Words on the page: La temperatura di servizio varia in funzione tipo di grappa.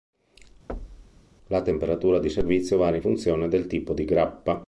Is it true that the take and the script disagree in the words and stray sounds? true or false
true